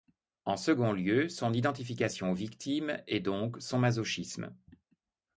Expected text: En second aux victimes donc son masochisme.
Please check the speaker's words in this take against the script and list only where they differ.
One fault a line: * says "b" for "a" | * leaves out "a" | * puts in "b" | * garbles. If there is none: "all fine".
* puts in "lieu son identification"
* puts in "et"